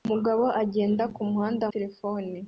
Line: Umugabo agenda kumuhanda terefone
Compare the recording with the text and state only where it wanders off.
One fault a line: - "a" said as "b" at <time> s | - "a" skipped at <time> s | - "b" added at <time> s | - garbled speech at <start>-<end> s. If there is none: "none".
none